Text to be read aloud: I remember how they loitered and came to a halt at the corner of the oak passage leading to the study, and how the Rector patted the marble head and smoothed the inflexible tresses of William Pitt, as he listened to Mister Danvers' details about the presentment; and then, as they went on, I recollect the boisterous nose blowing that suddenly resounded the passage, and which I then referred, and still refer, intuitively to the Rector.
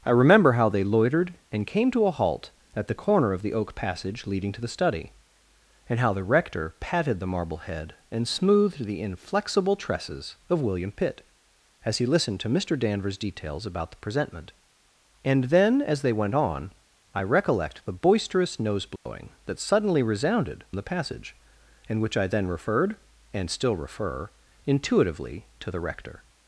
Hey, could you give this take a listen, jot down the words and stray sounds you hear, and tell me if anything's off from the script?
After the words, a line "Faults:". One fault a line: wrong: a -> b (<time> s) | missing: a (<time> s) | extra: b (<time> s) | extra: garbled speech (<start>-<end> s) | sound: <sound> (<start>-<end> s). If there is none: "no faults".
I remember how they loitered and came to a halt at the corner of the oak passage leading to the study, and how the Rector patted the marble head and smoothed the inflexible tresses of William Pitt, as he listened to Mister Danvers' details about the presentment; and then, as they went on, I recollect the boisterous nose blowing that suddenly resounded the passage, and which I then referred, and still refer, intuitively to the Rector.
Faults:
sound: dropout (19.0-19.1 s)